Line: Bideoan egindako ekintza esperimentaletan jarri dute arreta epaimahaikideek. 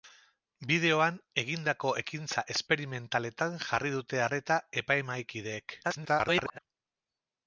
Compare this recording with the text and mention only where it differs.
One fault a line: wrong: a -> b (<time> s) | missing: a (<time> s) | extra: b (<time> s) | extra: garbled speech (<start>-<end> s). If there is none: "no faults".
extra: garbled speech (5.8-6.6 s)